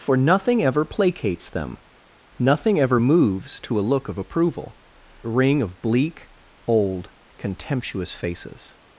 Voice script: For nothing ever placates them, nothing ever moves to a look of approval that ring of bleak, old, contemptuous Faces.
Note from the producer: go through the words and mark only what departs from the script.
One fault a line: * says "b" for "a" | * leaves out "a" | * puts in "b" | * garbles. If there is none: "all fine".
* leaves out "that"